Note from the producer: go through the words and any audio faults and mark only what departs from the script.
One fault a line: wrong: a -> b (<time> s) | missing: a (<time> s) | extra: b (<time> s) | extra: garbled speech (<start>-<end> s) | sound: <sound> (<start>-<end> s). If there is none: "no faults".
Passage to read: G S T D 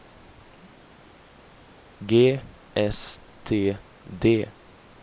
no faults